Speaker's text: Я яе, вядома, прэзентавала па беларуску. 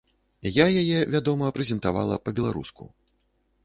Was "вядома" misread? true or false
false